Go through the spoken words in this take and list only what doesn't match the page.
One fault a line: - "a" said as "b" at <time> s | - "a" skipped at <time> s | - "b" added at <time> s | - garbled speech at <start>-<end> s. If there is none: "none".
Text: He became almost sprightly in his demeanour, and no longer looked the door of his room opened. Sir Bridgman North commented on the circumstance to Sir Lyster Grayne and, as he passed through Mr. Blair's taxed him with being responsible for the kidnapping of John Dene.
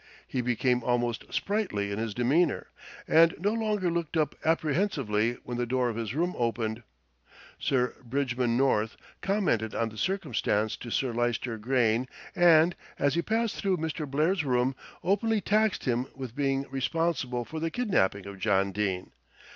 - "up apprehensively when" added at 4.2 s
- "room openly" added at 14.4 s